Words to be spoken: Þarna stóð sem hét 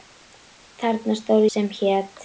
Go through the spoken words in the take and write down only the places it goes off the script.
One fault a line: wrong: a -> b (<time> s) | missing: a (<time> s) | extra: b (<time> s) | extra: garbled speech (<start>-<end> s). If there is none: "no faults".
no faults